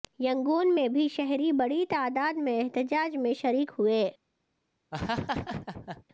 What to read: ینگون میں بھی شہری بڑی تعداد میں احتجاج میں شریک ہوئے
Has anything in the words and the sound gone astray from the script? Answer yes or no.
yes